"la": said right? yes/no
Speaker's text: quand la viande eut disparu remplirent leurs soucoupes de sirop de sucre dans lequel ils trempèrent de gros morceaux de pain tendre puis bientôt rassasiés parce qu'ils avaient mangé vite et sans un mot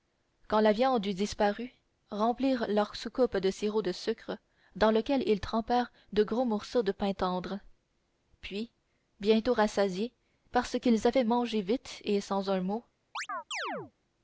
yes